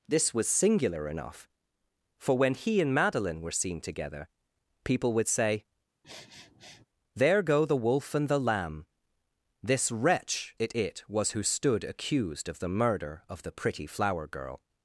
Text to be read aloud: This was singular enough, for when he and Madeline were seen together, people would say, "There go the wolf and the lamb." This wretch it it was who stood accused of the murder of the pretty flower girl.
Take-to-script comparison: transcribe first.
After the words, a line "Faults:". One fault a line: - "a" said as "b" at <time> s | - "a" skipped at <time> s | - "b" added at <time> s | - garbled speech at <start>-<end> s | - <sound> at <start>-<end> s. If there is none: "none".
This was singular enough, for when he and Madeline were seen together, people would say, "There go the wolf and the lamb." This wretch it it was who stood accused of the murder of the pretty flower girl.
Faults:
- sniff at 6.0-6.9 s